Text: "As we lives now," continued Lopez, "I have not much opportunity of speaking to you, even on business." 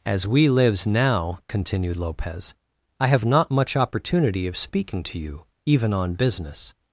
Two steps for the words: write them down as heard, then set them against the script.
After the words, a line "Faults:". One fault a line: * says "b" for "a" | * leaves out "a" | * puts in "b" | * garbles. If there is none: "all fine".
"As we lives now," continued Lopez, "I have not much opportunity of speaking to you, even on business."
Faults:
all fine